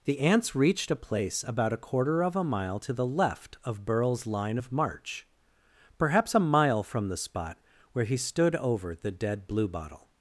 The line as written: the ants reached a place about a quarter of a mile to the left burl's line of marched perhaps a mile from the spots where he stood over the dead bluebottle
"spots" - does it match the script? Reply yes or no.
no